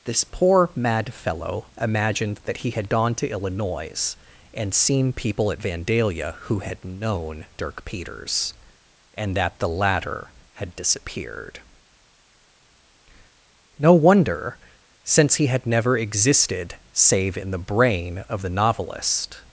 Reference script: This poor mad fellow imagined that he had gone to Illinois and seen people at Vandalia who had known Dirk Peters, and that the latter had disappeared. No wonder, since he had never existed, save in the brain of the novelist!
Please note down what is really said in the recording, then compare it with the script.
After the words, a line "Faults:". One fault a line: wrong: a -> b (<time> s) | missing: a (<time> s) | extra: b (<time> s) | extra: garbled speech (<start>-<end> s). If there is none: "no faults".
This poor mad fellow imagined that he had gone to Illinois and seen people at Vandalia who had known Dirk Peters, and that the latter had disappeared. No wonder, since he had never existed, save in the brain of the novelist!
Faults:
no faults